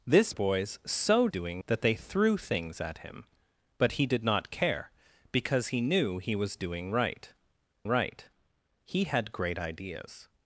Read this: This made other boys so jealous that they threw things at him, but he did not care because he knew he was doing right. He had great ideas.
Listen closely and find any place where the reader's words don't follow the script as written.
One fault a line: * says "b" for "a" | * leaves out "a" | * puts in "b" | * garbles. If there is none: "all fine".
* leaves out "made other"
* says "doing" for "jealous"
* puts in "right"